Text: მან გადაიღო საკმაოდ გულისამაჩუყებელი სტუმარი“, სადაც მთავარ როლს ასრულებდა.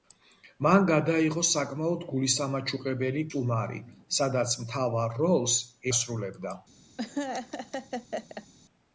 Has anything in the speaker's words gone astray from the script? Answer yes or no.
no